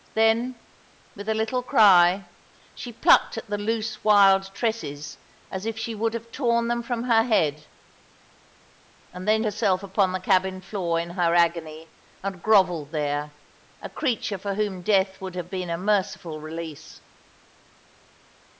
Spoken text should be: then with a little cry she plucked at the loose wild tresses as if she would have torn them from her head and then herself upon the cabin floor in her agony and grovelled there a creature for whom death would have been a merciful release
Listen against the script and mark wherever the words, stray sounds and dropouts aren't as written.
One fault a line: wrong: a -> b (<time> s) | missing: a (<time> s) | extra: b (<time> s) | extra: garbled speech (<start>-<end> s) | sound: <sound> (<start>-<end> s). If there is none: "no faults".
no faults